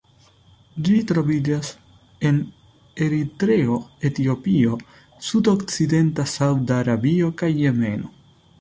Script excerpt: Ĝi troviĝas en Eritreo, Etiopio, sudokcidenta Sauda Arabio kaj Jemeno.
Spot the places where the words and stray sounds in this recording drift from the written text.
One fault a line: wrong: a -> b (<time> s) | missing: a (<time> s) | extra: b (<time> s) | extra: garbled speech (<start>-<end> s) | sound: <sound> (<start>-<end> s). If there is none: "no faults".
no faults